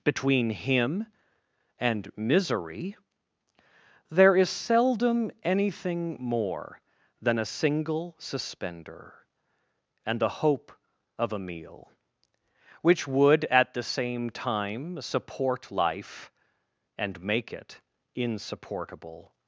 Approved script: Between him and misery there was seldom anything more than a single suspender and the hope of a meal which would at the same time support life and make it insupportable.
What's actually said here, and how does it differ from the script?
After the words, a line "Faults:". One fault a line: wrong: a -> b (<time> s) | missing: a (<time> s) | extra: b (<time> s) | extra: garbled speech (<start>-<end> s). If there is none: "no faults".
Between him and misery there is seldom anything more than a single suspender and the hope of a meal which would at the same time support life and make it insupportable.
Faults:
wrong: was -> is (4.3 s)